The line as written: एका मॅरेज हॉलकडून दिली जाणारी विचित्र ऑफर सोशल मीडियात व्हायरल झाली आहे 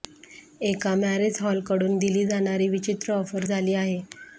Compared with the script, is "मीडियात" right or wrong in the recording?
wrong